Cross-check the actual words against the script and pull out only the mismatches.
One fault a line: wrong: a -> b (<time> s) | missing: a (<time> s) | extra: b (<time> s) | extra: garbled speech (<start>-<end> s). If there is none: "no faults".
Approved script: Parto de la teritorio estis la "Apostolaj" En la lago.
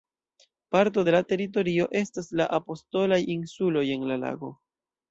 wrong: estis -> estas (2.0 s)
extra: Insuloj (3.4 s)